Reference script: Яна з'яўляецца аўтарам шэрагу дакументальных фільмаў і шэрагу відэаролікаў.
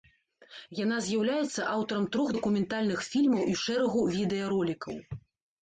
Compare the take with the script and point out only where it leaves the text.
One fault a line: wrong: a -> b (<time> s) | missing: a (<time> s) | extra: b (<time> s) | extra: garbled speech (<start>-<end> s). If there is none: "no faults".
wrong: шэрагу -> трох (2.2 s)